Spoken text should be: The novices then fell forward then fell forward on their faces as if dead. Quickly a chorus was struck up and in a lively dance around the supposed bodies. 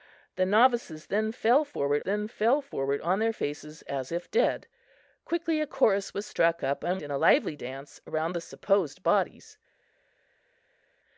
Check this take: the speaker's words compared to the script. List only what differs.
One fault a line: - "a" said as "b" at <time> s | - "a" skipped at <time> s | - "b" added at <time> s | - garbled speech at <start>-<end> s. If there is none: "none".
none